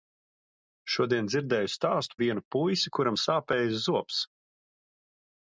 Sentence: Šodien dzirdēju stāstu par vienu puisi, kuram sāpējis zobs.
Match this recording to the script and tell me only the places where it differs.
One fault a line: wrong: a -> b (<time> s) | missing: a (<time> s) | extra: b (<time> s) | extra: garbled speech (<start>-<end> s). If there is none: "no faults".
missing: par (2.2 s)